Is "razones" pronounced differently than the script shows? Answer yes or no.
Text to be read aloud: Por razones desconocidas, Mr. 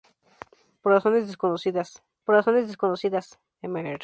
no